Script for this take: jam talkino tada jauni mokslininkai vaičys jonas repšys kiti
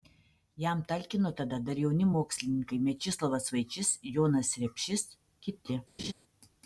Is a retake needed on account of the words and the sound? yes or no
yes